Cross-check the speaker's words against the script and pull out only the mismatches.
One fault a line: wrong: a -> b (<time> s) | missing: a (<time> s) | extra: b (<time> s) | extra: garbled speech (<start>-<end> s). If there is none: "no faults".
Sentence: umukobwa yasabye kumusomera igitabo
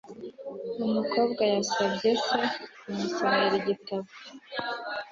extra: se (2.2 s)